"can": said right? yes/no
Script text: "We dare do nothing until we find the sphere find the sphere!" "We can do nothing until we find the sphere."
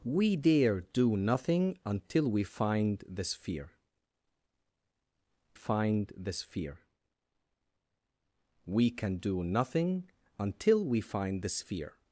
yes